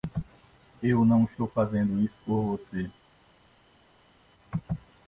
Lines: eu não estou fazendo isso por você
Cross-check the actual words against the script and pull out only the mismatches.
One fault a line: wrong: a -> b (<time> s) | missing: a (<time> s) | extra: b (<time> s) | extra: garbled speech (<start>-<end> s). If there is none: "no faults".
no faults